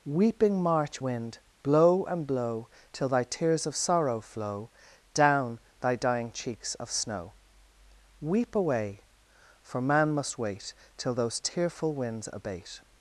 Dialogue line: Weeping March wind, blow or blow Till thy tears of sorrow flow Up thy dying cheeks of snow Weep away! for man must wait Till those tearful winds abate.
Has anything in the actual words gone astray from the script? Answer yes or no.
yes